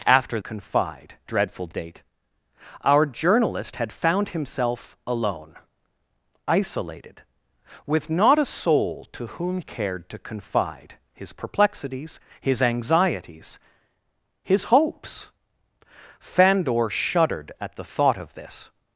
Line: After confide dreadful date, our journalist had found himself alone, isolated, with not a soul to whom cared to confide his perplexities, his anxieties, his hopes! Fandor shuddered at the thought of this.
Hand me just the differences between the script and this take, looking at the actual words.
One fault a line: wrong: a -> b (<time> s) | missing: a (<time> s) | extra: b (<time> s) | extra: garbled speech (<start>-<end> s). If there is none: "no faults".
no faults